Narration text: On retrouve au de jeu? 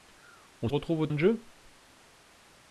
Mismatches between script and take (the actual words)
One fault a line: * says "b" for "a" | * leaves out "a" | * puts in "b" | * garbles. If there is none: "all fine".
all fine